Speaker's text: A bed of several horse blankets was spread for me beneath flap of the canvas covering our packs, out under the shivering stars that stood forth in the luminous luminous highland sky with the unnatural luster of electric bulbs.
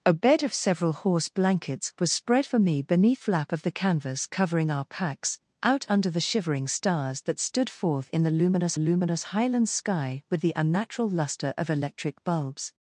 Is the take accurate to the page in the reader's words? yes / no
yes